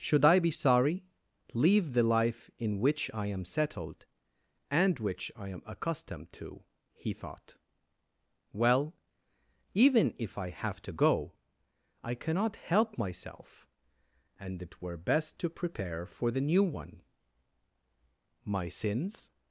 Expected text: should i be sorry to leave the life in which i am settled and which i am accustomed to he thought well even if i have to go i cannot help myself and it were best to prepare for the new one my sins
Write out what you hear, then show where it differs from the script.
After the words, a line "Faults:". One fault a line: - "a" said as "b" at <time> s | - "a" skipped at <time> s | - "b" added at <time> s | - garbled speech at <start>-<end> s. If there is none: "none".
should i be sorry leave the life in which i am settled and which i am accustomed to he thought well even if i have to go i cannot help myself and it were best to prepare for the new one my sins
Faults:
- "to" skipped at 1.1 s